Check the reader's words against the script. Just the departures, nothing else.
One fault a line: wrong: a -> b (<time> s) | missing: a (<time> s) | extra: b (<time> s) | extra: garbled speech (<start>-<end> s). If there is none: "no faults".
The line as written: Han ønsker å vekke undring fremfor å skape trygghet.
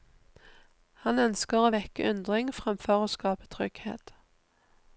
no faults